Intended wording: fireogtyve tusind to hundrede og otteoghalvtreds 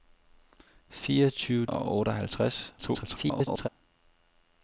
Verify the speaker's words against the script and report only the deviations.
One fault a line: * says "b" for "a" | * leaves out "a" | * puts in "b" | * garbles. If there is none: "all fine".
* leaves out "tusind to hundrede"
* garbles